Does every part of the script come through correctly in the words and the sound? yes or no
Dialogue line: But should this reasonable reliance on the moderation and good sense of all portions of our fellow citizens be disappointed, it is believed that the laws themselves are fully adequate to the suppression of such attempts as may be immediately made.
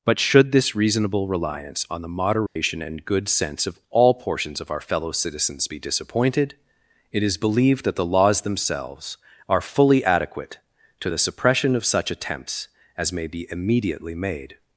no